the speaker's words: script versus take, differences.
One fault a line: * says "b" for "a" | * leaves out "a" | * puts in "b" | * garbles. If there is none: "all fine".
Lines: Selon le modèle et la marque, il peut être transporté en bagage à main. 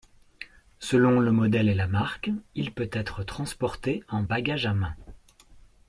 all fine